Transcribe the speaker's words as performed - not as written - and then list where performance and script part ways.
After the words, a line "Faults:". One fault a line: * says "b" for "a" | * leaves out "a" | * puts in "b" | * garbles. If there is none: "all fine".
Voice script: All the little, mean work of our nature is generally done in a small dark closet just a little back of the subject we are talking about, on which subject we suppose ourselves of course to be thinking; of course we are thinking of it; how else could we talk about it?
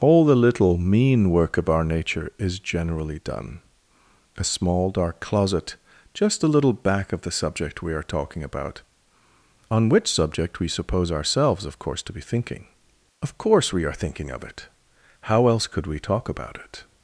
All the little, mean work of our nature is generally done a small dark closet just a little back of the subject we are talking about, on which subject we suppose ourselves of course to be thinking; of course we are thinking of it; how else could we talk about it?
Faults:
* leaves out "in"